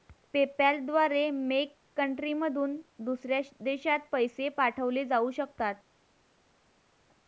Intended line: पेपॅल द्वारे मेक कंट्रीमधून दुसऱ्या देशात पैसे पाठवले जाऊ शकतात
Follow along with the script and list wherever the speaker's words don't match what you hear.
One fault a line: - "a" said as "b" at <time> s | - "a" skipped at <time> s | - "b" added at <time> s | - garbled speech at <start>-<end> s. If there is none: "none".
none